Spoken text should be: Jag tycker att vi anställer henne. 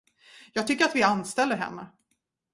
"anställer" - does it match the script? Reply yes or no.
yes